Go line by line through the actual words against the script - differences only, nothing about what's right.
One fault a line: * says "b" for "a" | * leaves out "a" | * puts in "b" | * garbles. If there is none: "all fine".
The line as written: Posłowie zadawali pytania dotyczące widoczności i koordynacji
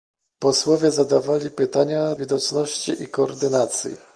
* leaves out "dotyczące"